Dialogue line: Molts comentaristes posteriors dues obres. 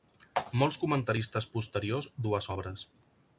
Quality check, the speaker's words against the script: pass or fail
pass